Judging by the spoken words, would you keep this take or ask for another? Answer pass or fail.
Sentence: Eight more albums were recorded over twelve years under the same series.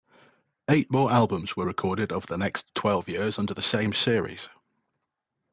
fail